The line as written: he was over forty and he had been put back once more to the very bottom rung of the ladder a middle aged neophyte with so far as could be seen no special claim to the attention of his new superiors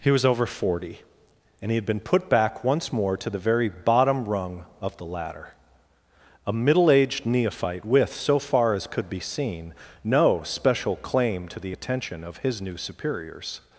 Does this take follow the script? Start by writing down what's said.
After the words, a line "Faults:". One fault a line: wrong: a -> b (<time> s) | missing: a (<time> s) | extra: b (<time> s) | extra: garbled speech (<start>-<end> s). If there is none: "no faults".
he was over forty and he had been put back once more to the very bottom rung of the ladder a middle aged neophyte with so far as could be seen no special claim to the attention of his new superiors
Faults:
no faults